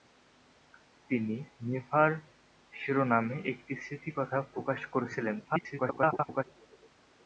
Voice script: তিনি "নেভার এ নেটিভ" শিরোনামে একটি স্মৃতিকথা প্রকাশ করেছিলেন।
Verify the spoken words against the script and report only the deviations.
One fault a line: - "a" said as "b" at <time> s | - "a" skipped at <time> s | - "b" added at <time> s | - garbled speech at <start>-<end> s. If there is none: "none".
- "এ নেটিভ" skipped at 2.1 s
- garbled speech at 5.4-6.4 s